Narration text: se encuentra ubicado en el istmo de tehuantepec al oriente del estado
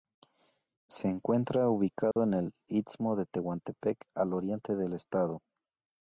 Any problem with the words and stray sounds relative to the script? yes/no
yes